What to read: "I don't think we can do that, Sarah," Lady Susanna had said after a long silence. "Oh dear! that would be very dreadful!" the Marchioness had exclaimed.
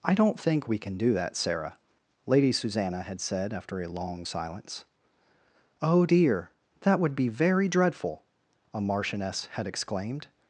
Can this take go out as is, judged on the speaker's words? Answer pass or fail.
fail